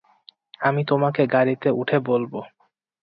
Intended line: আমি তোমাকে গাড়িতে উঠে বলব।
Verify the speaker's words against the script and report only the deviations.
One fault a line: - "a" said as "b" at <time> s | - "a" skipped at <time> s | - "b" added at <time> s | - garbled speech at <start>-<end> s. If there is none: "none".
none